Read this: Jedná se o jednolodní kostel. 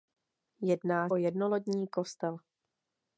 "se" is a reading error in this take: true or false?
true